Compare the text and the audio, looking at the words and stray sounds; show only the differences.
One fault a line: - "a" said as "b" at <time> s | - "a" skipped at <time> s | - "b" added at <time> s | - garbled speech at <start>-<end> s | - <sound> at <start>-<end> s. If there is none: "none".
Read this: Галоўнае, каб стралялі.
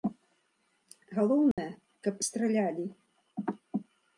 - dropout at 1.5-1.6 s